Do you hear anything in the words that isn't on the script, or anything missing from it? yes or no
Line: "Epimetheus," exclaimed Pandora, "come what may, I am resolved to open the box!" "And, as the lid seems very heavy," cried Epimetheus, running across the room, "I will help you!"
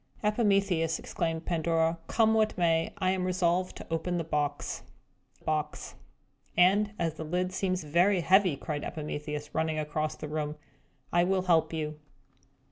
yes